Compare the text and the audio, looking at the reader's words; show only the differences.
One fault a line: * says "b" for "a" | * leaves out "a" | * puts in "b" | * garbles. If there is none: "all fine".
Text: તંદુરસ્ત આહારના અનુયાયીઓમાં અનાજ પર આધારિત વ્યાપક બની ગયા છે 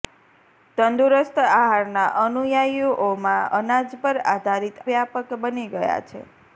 all fine